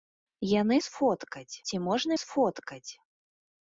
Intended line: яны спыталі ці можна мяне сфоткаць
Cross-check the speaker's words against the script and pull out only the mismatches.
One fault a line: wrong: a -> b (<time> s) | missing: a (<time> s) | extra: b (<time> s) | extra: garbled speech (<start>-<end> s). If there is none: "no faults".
wrong: спыталі -> сфоткаць (0.9 s)
missing: мяне (2.1 s)